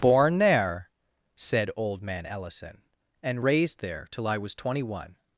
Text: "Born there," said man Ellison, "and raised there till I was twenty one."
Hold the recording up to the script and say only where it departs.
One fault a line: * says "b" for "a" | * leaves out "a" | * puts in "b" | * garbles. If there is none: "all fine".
* puts in "old"